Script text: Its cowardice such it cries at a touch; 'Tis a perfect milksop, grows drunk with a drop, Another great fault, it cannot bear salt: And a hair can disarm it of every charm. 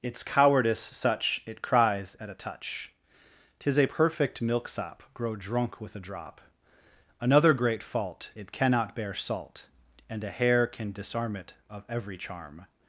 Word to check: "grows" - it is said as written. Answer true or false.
false